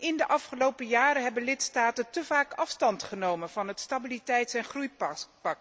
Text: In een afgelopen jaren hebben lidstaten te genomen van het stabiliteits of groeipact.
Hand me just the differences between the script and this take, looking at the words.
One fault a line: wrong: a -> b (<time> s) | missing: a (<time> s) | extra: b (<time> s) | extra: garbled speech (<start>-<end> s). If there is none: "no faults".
wrong: een -> de (0.2 s)
extra: vaak afstand (2.2 s)
wrong: of -> en (4.5 s)